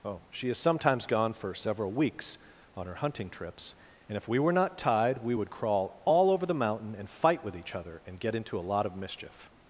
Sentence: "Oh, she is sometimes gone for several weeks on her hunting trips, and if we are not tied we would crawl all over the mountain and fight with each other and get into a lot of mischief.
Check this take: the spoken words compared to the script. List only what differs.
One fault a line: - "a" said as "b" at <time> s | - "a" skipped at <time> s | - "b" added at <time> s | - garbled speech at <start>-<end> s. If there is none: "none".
- "are" said as "were" at 4.4 s